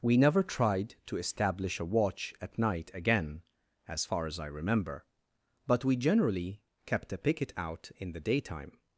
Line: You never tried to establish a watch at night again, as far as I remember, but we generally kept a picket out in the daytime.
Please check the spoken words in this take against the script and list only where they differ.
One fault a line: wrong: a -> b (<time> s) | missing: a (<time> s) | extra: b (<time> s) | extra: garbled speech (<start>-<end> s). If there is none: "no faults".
wrong: You -> We (0.0 s)